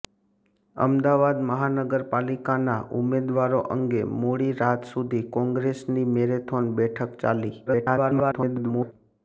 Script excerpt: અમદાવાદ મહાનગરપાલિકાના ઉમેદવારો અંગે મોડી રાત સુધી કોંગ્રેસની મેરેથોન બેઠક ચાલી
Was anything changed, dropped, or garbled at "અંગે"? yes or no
no